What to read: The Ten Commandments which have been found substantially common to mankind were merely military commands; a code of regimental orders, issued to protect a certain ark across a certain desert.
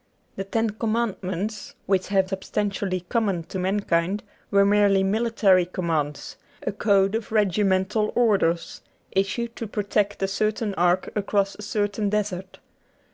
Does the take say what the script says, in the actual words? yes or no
no